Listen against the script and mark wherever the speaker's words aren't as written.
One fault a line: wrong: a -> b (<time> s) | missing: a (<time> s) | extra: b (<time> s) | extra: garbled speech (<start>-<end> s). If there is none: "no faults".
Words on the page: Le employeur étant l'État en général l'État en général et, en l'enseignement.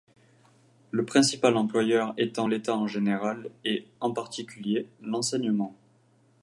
extra: principal (1.1 s)
wrong: l'État -> et (3.6 s)
wrong: général et en -> particulier (4.1 s)